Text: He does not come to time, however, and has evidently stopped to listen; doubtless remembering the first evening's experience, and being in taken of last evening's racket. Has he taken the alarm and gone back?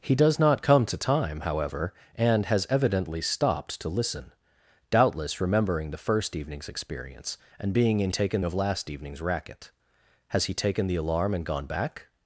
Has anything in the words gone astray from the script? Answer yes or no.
no